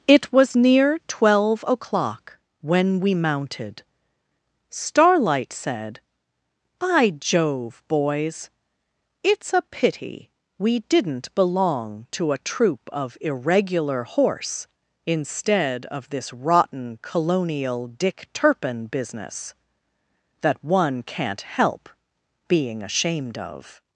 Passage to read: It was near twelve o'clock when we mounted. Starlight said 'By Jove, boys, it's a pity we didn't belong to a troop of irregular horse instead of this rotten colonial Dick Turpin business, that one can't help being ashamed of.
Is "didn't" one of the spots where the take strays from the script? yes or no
no